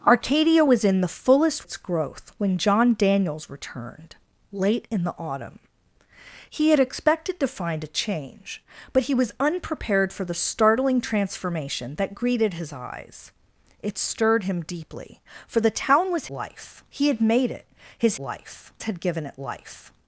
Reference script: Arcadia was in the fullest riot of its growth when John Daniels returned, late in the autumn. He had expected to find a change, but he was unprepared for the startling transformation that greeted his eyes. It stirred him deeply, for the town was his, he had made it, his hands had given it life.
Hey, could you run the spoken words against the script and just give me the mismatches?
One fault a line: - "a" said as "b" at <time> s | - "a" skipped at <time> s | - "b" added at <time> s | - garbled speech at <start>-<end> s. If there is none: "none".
- "riot of" skipped at 1.7 s
- "his" said as "life" at 16.3 s
- "hands" said as "life" at 18.2 s